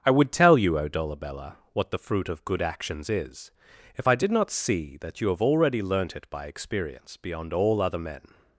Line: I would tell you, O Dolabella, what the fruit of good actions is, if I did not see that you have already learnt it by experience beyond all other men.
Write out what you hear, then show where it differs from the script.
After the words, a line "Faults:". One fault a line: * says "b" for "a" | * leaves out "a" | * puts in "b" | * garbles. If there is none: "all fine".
I would tell you, O Dolabella, what the fruit of good actions is, if I did not see that you have already learnt it by experience beyond all other men.
Faults:
all fine